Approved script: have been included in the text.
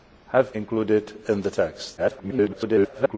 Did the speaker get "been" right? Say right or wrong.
wrong